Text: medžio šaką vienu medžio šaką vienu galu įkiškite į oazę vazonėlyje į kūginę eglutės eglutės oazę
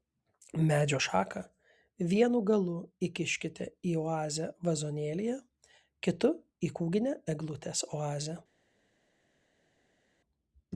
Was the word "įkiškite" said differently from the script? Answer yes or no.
no